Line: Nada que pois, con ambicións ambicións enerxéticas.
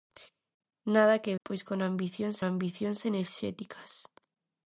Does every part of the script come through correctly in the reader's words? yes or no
yes